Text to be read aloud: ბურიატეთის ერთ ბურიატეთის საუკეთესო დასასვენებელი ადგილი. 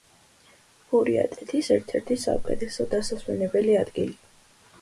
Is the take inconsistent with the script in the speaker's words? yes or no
yes